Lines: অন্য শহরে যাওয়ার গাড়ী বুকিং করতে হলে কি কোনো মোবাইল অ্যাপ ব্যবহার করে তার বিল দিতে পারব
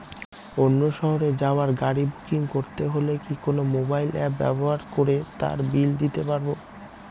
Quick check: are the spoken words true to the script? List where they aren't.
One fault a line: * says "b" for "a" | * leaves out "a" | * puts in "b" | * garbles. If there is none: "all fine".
all fine